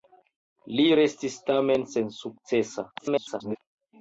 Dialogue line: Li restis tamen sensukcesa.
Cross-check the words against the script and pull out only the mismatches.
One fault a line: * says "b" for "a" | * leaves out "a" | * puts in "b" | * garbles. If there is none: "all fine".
* garbles